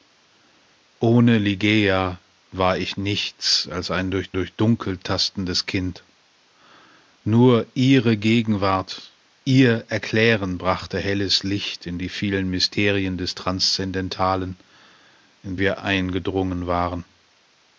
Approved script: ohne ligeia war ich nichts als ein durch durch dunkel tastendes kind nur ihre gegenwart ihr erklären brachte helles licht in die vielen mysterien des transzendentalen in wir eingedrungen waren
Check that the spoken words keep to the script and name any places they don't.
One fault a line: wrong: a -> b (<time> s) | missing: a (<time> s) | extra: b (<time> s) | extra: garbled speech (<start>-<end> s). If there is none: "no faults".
no faults